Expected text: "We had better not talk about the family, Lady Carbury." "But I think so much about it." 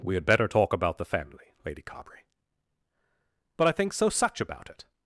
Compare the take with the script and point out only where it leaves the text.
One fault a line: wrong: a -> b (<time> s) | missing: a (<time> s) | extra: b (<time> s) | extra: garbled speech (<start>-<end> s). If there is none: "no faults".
missing: not (0.5 s)
wrong: much -> such (4.1 s)